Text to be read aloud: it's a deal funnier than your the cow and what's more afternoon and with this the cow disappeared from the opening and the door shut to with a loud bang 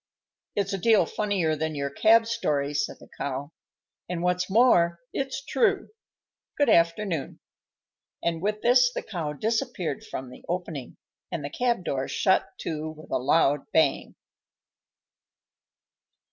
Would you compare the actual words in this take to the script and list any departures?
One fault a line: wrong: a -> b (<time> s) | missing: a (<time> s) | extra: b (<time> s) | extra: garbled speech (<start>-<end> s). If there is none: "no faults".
extra: cab story said (1.9 s)
extra: it's true good (5.1 s)
extra: cab (11.5 s)